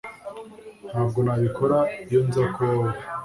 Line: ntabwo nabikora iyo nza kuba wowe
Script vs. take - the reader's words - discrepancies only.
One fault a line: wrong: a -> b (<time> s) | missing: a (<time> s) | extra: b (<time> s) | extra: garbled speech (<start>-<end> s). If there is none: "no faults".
no faults